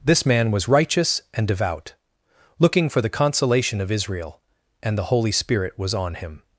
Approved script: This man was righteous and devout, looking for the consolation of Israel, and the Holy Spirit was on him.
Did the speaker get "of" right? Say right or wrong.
right